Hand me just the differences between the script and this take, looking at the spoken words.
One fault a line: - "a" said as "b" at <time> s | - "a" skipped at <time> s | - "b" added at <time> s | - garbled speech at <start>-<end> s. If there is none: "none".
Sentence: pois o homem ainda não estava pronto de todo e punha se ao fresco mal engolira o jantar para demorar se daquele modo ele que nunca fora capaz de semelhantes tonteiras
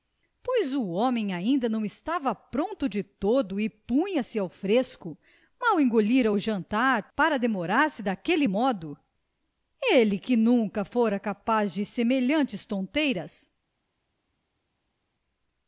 none